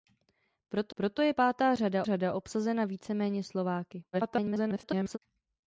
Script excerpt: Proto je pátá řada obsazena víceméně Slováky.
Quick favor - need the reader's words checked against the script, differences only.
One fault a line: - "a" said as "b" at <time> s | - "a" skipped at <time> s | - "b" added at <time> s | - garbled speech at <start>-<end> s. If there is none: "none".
- "proto" added at 0.9 s
- "řada" added at 2.0 s
- garbled speech at 4.1-5.2 s